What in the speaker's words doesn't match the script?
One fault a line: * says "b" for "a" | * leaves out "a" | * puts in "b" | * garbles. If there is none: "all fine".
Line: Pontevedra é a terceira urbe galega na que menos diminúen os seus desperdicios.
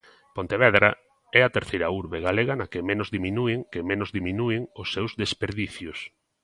* puts in "que menos diminúen"